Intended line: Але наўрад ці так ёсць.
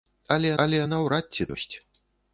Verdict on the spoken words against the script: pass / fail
fail